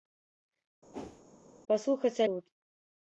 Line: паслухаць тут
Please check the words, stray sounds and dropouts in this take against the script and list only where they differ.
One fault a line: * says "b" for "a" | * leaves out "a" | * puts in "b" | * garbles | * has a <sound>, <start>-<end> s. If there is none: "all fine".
* has a whoosh, 0.9-1.2 s